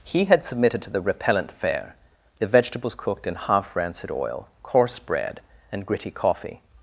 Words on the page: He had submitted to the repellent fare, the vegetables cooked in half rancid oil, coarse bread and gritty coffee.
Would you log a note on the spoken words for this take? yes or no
no